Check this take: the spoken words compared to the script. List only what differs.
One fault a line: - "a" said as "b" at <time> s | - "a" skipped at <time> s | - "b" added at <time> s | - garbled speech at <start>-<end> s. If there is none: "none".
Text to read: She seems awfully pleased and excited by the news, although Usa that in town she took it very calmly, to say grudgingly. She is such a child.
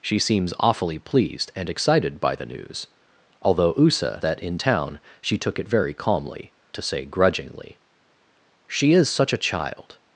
none